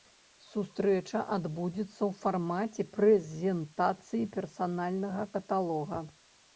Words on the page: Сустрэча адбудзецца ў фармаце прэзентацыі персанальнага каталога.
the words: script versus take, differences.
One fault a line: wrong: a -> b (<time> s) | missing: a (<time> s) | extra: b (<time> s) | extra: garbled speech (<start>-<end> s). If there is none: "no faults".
no faults